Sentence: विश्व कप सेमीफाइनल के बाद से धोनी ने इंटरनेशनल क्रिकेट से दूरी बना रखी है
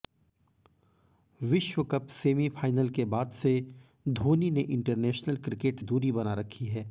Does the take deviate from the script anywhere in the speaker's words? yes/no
yes